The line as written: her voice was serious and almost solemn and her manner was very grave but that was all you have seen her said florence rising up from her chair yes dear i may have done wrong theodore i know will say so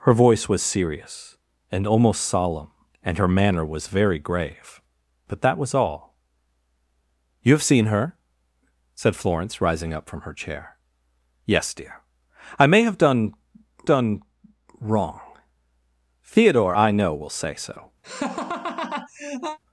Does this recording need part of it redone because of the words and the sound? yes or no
yes